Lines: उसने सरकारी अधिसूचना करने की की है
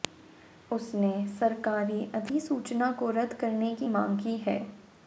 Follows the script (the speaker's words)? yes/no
no